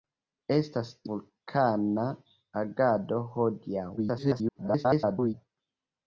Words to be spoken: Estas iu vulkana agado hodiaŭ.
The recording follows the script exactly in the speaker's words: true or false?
false